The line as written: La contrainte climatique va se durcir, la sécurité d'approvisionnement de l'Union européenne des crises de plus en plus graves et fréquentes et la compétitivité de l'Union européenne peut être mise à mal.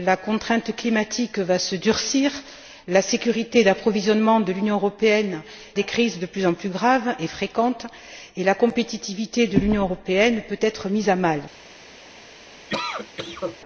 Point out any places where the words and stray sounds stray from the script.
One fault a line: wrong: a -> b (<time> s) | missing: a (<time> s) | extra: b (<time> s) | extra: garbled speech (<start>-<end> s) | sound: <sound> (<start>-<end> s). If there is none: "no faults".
sound: cough (12.7-13.6 s)